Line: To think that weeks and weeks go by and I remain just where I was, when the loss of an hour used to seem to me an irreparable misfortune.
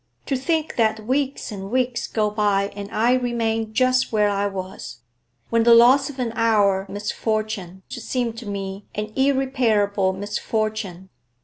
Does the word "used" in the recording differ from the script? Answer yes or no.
yes